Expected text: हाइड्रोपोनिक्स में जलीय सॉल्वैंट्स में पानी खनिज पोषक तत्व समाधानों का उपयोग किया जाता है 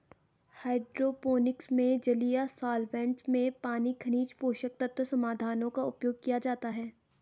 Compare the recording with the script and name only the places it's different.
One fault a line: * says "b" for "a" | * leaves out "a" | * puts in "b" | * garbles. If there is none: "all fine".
all fine